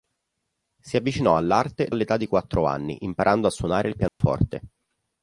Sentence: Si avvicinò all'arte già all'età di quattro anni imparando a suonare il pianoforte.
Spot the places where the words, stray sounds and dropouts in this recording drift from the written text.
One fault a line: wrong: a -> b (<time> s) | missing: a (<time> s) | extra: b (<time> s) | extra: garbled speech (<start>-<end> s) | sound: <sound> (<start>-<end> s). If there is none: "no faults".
missing: già (1.9 s)
sound: dropout (4.1-4.2 s)